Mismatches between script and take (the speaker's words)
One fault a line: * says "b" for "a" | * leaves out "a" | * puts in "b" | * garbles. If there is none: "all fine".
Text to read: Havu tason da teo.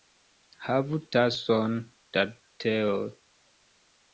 all fine